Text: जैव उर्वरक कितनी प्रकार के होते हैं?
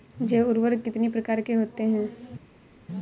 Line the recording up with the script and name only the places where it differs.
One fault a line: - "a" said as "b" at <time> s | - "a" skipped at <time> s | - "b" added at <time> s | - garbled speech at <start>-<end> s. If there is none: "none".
none